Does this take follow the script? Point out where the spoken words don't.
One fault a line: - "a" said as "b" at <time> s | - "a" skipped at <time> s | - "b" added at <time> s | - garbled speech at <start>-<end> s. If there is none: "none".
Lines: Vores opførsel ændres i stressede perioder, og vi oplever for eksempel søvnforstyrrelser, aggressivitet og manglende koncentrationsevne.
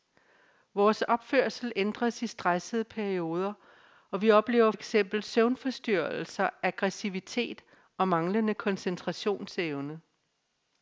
- "for" skipped at 4.7 s